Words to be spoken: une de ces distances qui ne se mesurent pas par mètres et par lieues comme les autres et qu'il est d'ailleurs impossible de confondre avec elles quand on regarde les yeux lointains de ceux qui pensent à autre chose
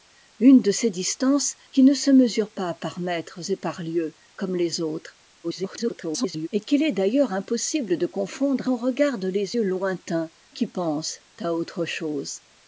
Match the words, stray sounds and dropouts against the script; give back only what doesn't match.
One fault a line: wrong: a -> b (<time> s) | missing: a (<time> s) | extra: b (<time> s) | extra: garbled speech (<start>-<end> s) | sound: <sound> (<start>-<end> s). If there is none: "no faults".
extra: garbled speech (5.4-6.5 s)
missing: avec elles quand (8.7 s)
missing: de ceux (10.3 s)